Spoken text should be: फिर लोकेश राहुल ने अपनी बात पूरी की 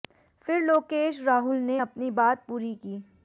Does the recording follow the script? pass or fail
pass